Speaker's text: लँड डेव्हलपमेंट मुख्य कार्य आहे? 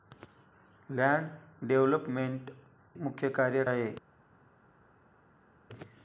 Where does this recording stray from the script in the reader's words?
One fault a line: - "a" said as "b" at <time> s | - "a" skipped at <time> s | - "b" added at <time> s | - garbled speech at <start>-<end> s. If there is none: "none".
none